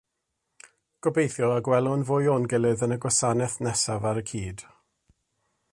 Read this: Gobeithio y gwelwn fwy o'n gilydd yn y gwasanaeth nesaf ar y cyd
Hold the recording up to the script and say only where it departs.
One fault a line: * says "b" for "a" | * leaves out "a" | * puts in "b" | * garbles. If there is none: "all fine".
all fine